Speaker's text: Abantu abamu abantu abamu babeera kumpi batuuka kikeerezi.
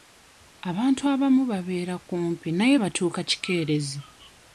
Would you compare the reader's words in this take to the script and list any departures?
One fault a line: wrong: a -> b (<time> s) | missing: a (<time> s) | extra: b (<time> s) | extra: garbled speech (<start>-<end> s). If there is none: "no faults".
missing: abantu abamu (1.4 s)
extra: naye (2.6 s)